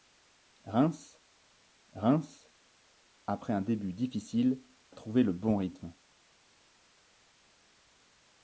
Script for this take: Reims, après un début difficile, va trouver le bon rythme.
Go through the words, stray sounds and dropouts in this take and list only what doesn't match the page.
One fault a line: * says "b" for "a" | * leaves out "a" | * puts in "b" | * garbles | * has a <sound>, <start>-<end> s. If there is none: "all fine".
* puts in "reims"
* leaves out "va"